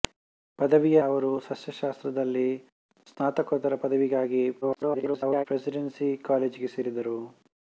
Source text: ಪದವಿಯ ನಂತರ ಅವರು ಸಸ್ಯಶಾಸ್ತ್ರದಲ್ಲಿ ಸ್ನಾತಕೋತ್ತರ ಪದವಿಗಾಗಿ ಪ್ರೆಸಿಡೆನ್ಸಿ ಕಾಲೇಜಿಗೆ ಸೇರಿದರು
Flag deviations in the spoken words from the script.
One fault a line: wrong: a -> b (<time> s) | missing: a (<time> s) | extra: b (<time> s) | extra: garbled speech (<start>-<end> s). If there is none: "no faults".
missing: ನಂತರ (1.0 s)
extra: garbled speech (4.6-5.5 s)